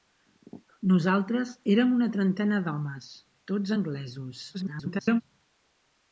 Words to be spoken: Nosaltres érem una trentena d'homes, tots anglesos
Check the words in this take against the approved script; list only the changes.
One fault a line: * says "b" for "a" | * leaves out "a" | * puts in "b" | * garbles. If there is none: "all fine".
* garbles